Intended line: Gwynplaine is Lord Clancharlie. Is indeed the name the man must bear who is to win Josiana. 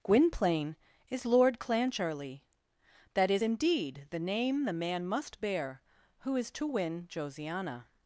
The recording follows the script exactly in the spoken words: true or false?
false